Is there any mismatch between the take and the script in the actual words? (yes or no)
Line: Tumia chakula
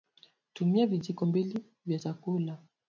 yes